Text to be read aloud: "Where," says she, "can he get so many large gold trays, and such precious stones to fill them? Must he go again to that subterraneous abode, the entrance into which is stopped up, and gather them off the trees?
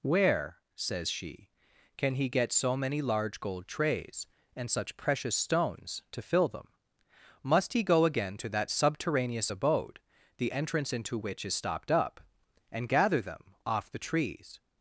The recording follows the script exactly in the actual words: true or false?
true